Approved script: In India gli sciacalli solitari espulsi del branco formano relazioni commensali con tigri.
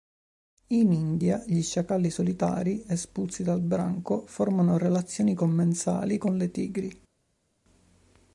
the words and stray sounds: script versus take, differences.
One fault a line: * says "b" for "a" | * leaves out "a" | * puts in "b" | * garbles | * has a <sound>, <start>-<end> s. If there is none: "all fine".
* says "dal" for "del"
* puts in "le"